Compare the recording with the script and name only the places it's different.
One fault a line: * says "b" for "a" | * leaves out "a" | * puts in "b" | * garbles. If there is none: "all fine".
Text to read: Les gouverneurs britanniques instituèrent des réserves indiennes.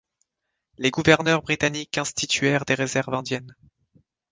all fine